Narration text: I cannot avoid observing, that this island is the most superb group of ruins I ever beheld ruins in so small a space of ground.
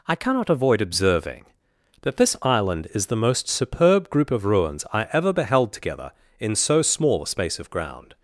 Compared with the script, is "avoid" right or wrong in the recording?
right